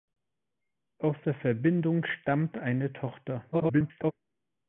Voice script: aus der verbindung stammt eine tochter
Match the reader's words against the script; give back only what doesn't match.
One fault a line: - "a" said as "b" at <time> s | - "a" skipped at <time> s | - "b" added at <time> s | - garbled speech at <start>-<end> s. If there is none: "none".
- garbled speech at 3.5-4.1 s